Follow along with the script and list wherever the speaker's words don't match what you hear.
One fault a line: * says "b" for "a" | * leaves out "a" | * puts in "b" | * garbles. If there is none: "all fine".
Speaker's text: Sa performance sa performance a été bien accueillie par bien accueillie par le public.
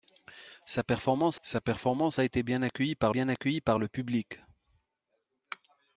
all fine